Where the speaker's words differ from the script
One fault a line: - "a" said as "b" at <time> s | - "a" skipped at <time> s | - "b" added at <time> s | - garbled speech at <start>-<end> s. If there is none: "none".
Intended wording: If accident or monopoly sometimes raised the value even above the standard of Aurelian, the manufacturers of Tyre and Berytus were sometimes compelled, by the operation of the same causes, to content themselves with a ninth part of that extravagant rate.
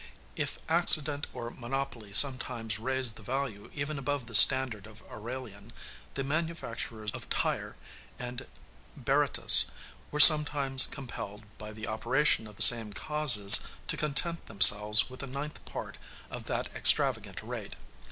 none